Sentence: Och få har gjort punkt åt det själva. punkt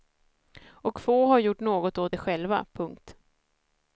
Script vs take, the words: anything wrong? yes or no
yes